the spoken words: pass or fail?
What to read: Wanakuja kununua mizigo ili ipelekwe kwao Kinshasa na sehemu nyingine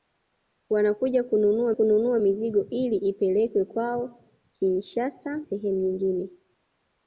fail